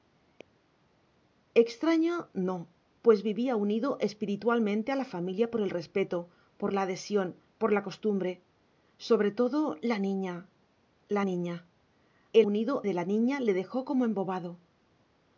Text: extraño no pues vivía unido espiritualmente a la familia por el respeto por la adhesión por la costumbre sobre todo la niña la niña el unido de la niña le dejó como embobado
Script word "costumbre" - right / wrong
right